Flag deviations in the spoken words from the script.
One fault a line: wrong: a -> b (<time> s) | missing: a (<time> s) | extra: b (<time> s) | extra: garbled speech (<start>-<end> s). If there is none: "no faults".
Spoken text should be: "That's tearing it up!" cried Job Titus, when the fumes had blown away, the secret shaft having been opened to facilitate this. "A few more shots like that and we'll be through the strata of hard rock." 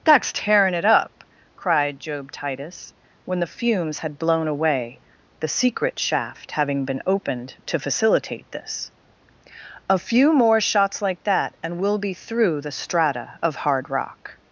no faults